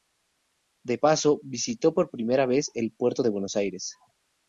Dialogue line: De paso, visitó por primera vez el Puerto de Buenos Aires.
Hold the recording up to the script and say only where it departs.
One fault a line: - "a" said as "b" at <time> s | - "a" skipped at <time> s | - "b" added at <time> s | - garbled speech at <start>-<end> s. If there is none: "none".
none